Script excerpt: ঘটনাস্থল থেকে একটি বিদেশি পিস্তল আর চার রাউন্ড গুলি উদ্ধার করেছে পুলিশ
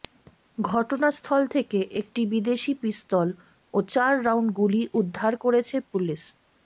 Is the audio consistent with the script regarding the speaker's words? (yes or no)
no